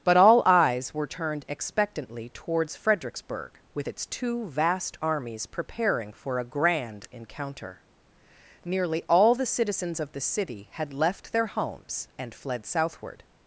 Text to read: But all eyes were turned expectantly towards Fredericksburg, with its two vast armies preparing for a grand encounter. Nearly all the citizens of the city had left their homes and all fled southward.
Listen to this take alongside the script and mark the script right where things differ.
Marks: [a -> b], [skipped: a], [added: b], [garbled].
But all eyes were turned expectantly towards Fredericksburg, with its two vast armies preparing for a grand encounter. Nearly all the citizens of the city had left their homes and [skipped: all] fled southward.